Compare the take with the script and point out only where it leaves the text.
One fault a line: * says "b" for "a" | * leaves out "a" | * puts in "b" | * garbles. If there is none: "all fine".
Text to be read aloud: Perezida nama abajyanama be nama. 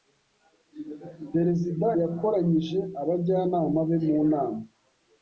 * says "yakoranyije" for "nama"
* puts in "mu"